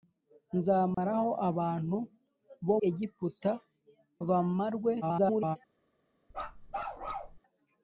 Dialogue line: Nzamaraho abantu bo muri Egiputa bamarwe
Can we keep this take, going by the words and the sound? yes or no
no